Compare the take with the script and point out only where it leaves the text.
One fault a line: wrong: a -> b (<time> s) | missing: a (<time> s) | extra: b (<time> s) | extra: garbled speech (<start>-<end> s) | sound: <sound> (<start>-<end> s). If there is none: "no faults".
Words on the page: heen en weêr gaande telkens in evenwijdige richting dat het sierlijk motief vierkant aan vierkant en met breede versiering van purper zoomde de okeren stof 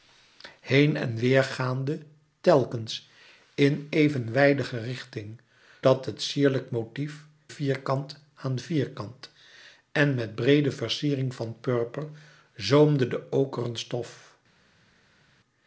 no faults